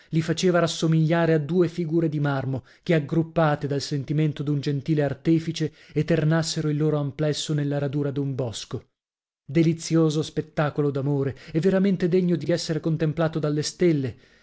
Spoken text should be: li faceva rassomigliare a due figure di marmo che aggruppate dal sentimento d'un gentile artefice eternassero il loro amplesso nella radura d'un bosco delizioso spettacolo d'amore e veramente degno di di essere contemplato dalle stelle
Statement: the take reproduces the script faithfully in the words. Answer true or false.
true